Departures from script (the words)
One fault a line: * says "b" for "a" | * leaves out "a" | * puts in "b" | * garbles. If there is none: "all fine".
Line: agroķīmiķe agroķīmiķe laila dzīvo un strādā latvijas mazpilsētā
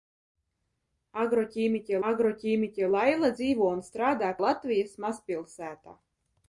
all fine